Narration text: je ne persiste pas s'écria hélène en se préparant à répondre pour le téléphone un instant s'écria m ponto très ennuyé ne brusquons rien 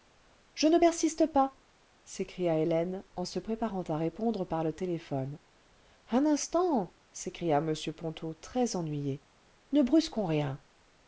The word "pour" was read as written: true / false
false